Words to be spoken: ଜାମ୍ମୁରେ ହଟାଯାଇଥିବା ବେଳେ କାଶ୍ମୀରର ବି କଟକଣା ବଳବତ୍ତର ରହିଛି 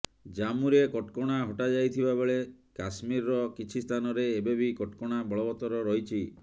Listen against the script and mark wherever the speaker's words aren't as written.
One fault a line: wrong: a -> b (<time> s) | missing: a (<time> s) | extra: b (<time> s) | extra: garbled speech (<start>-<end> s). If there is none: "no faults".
extra: କଟକଣା (0.9 s)
extra: କିଛି ସ୍ଥାନରେ ଏବେ (3.6 s)